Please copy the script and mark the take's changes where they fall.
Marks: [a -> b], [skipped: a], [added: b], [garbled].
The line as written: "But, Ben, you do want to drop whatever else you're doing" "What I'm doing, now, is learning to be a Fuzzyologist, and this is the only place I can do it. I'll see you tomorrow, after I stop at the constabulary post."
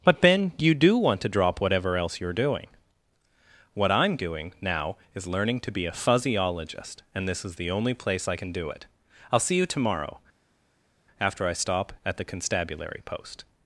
"But, Ben, you do want to drop whatever else you're doing" "What I'm doing, now, is learning to be a Fuzzyologist, and this is the only place I can do it. I'll see you tomorrow, after I stop at the constabulary post."